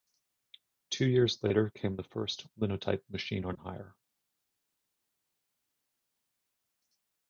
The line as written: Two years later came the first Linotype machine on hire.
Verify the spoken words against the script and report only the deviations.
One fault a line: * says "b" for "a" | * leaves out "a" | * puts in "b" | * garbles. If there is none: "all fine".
all fine